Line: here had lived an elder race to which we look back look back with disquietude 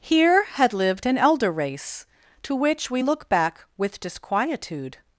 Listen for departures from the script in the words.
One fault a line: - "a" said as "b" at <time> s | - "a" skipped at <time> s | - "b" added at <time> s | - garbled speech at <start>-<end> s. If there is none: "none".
- "look back" skipped at 3.7 s